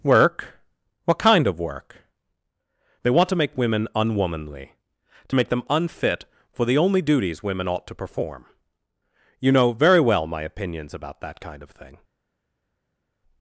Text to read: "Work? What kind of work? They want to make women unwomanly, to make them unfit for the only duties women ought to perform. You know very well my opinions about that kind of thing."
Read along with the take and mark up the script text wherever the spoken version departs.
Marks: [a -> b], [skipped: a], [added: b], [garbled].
"Work? What kind of work? They want to make women unwomanly, to make them unfit for the only duties women ought to perform. You know very well my opinions about that kind of thing."